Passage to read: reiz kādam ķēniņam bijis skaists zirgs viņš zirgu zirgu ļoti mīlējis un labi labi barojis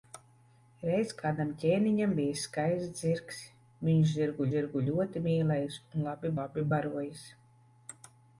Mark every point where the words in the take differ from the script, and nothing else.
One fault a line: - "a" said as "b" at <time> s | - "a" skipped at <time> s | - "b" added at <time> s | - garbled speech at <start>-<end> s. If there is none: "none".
none